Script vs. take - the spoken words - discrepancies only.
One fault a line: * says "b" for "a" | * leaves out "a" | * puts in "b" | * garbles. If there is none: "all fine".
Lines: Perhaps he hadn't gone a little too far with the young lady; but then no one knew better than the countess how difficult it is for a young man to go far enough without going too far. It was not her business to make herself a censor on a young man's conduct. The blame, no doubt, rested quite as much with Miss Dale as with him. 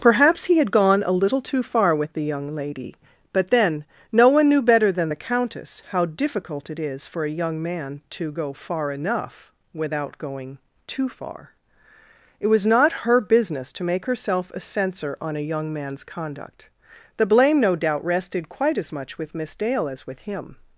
* says "had" for "hadn't"